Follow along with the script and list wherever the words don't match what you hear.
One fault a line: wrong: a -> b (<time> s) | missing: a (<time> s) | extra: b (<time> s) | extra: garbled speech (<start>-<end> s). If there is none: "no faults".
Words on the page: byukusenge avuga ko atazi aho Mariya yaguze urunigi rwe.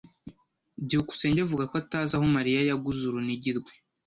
no faults